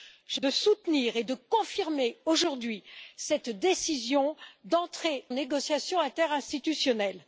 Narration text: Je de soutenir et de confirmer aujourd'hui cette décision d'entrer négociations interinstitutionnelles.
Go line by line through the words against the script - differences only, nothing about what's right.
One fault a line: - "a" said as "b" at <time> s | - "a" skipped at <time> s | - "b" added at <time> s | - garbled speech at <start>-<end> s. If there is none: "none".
none